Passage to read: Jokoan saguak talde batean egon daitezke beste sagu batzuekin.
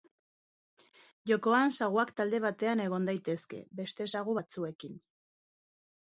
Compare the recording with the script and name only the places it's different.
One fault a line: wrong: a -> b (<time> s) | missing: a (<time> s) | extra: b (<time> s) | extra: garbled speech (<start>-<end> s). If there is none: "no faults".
no faults